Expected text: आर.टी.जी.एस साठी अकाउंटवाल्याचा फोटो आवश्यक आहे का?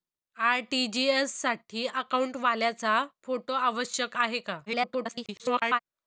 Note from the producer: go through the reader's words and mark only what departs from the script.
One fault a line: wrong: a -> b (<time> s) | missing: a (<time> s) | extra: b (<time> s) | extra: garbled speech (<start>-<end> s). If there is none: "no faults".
extra: garbled speech (4.7-5.8 s)